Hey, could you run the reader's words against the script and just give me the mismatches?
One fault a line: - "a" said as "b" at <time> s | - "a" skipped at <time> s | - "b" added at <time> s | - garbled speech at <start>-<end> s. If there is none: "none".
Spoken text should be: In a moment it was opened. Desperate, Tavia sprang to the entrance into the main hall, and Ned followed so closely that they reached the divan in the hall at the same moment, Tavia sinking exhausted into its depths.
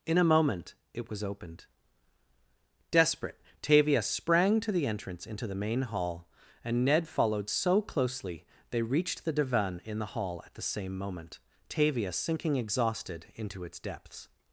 - "that" skipped at 8.4 s